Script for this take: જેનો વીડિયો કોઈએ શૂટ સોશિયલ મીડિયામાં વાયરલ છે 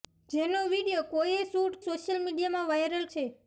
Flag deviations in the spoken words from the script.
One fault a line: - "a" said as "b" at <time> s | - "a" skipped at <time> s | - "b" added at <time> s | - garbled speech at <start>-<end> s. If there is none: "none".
none